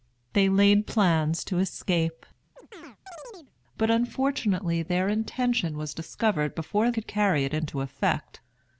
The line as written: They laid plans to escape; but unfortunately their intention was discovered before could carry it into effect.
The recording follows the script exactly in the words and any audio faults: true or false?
false